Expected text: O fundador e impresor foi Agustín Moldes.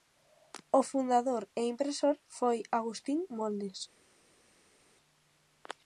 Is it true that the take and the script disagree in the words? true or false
false